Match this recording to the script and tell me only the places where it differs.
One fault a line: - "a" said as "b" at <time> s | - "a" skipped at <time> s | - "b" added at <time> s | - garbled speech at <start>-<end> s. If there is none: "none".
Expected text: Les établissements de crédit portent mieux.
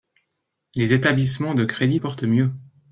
none